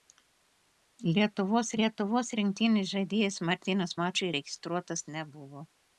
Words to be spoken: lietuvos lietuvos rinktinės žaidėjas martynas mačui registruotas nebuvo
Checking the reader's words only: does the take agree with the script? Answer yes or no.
yes